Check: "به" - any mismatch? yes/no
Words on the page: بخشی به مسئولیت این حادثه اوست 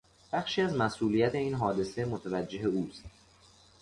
yes